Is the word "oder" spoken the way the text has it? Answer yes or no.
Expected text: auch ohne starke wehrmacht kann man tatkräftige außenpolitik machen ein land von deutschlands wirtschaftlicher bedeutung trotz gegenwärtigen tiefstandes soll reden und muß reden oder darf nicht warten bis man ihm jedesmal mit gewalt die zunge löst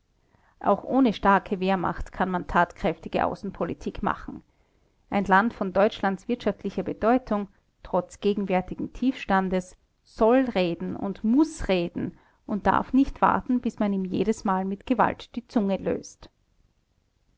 no